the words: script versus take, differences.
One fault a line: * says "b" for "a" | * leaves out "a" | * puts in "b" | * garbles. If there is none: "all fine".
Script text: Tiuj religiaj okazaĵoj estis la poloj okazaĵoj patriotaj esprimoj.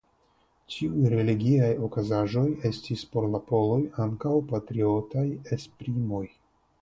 * puts in "por"
* says "ankaŭ" for "okazaĵoj"